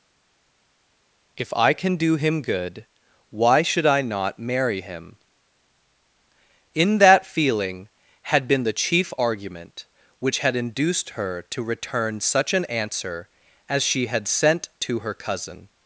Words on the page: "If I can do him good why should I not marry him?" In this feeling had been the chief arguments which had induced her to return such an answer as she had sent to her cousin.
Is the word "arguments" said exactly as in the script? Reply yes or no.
no